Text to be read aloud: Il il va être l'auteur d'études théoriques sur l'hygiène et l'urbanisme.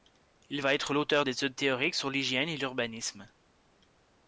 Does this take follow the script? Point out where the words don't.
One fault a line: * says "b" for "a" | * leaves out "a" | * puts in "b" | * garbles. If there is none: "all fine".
* leaves out "il"